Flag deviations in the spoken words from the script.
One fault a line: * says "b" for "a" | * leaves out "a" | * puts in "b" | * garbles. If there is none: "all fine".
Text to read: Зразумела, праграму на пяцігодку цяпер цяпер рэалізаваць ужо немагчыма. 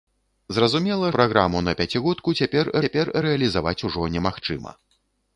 all fine